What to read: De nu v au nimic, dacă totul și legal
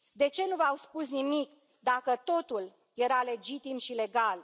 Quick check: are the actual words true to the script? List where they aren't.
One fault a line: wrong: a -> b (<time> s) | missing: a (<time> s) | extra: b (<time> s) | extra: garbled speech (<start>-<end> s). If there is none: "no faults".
extra: ce (0.3 s)
extra: spus (0.7 s)
extra: era legitim (2.9 s)